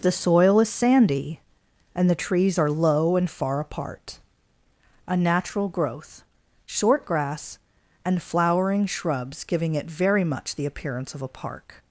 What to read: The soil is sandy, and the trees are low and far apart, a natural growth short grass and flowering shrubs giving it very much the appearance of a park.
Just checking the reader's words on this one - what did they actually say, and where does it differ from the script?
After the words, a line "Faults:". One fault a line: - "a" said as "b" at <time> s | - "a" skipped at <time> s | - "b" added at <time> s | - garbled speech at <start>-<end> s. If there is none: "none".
The soil is sandy, and the trees are low and far apart, a natural growth short grass and flowering shrubs giving it very much the appearance of a park.
Faults:
none